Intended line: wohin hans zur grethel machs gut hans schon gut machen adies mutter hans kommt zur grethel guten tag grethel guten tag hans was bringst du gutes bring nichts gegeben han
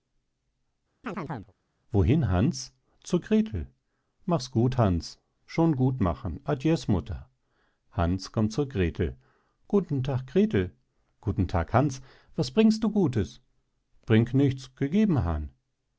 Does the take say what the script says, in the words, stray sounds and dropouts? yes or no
no